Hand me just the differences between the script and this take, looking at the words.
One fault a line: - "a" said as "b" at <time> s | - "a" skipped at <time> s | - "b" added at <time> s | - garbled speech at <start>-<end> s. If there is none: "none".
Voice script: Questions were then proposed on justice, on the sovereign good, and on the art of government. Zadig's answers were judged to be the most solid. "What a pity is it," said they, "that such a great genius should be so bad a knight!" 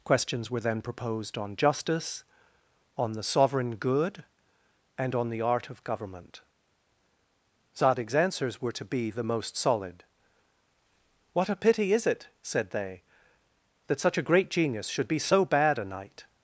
- "judged" skipped at 8.7 s